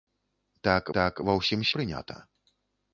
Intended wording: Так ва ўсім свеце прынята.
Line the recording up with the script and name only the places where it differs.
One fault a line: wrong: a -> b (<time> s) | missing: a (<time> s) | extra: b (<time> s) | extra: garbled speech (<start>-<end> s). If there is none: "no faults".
extra: так (1.0 s)
missing: свеце (1.7 s)